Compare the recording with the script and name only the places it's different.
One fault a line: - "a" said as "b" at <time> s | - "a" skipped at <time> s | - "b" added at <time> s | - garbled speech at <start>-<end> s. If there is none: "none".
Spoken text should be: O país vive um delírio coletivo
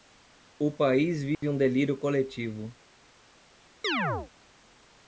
none